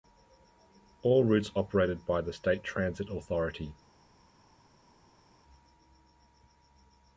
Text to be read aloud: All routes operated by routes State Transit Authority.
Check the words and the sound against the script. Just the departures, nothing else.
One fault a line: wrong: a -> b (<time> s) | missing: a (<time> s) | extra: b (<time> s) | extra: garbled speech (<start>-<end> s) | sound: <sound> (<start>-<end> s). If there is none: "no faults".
wrong: routes -> the (2.2 s)